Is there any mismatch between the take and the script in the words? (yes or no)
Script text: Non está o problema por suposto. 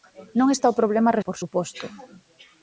no